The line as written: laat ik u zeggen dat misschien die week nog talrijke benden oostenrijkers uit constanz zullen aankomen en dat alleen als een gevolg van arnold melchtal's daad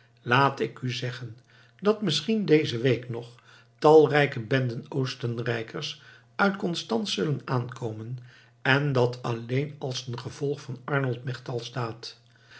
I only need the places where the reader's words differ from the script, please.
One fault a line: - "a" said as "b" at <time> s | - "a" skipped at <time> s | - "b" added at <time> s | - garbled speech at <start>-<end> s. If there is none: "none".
- "die" said as "deze" at 2.5 s